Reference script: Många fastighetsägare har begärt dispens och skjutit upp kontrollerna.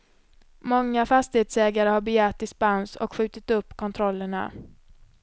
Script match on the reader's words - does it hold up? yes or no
yes